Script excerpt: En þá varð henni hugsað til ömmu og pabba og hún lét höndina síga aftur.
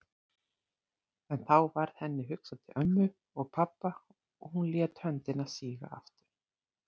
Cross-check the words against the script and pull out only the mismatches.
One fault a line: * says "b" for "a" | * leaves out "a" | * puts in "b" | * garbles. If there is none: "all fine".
all fine